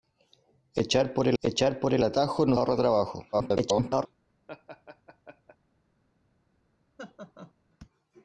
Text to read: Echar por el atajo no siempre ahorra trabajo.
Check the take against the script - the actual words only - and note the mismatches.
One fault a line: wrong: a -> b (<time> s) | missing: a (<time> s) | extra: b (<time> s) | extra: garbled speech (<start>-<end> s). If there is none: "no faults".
extra: echar por el (1.4 s)
missing: siempre (2.6 s)
extra: garbled speech (3.3-4.1 s)